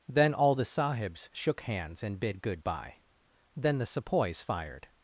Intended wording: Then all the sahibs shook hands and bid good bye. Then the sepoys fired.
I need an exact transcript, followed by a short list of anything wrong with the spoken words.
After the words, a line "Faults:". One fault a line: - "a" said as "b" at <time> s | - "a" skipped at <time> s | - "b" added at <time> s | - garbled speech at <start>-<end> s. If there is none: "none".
Then all the sahibs shook hands and bid good bye. Then the sepoys fired.
Faults:
none